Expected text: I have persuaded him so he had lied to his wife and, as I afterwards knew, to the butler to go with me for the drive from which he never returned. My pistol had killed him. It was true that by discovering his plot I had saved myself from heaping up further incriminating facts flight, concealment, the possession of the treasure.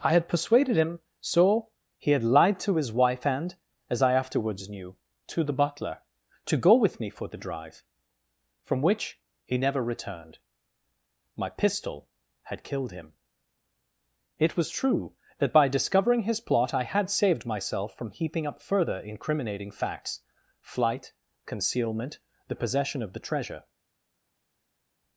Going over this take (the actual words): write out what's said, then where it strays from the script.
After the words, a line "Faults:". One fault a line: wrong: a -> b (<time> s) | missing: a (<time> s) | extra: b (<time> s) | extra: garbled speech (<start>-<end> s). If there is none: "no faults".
I had persuaded him so he had lied to his wife and, as I afterwards knew, to the butler to go with me for the drive from which he never returned. My pistol had killed him. It was true that by discovering his plot I had saved myself from heaping up further incriminating facts flight, concealment, the possession of the treasure.
Faults:
wrong: have -> had (0.1 s)